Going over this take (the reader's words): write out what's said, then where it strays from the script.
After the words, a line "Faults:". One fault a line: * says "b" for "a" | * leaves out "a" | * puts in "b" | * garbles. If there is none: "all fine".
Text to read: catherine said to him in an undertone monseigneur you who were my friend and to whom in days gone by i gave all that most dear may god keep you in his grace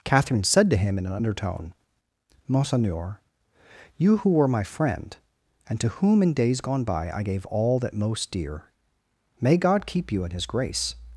catherine said to him in an undertone monseigneur you who were my friend and to whom in days gone by i gave all that most dear may god keep you in his grace
Faults:
all fine